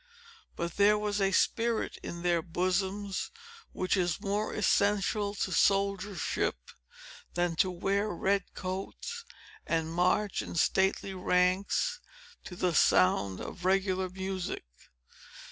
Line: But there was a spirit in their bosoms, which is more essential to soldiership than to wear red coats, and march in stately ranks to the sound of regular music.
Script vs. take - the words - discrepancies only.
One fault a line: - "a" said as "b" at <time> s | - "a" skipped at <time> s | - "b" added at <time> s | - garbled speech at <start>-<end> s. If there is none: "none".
none